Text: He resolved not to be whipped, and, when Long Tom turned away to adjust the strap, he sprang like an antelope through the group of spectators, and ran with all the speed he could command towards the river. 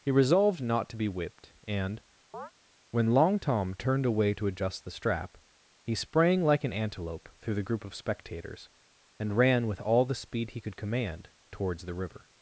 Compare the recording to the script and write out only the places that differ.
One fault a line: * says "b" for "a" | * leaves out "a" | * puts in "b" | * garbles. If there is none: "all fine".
all fine